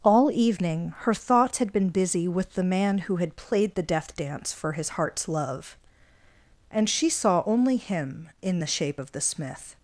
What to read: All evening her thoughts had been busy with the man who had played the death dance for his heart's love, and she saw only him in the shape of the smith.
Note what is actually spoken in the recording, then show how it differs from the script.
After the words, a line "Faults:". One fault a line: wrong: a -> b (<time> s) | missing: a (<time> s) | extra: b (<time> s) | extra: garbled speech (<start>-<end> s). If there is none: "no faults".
All evening her thoughts had been busy with the man who had played the death dance for his heart's love, and she saw only him in the shape of the smith.
Faults:
no faults